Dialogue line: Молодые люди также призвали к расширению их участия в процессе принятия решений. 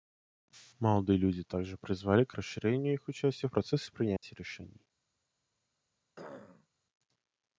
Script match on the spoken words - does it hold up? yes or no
yes